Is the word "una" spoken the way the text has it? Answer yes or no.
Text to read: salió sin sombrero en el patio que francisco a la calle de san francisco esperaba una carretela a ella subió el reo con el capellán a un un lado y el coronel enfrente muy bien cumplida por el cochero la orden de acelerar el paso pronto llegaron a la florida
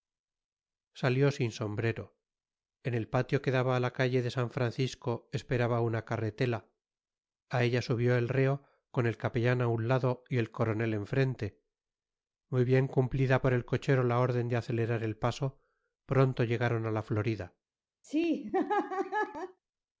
yes